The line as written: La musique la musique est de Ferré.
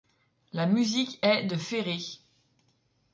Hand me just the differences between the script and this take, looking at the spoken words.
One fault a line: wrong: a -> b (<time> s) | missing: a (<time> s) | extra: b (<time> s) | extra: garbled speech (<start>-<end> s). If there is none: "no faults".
missing: la musique (1.2 s)